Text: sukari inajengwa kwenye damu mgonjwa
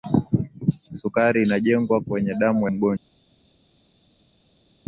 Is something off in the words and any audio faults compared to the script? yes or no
no